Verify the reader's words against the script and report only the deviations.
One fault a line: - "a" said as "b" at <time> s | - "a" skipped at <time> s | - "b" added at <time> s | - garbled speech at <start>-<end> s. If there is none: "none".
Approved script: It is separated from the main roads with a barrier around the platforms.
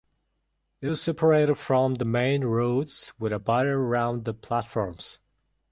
none